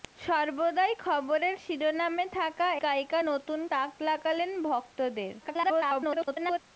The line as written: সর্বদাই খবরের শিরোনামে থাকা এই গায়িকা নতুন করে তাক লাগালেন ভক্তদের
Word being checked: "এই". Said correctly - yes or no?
no